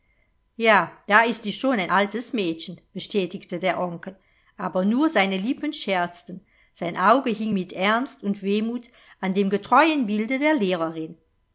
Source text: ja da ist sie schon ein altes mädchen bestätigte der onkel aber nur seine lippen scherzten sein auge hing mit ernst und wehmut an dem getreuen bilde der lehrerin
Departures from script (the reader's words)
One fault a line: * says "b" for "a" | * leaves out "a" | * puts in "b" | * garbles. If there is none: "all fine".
all fine